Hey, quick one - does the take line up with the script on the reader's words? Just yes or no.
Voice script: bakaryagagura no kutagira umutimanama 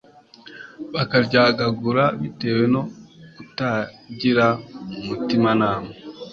no